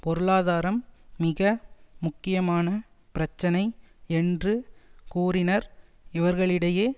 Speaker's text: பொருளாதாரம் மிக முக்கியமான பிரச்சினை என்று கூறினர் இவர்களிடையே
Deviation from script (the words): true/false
false